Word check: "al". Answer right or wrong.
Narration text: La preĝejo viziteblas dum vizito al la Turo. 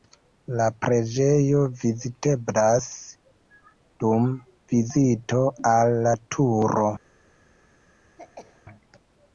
right